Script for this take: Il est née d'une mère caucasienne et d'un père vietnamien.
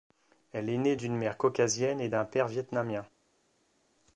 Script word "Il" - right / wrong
wrong